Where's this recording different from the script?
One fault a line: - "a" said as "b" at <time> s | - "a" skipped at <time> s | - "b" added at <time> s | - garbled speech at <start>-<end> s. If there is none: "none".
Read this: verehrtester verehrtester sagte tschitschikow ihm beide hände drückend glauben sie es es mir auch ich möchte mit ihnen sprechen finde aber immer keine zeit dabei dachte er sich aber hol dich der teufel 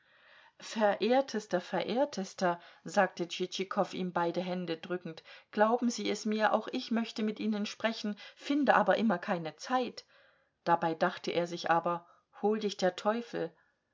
- "es" skipped at 6.2 s